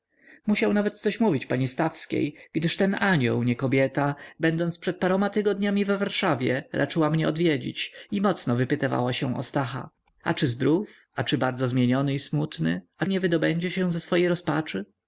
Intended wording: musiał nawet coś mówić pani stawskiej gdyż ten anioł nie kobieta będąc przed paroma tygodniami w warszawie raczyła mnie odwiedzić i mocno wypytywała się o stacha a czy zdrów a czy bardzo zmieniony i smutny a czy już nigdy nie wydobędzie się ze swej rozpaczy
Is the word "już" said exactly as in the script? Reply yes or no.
no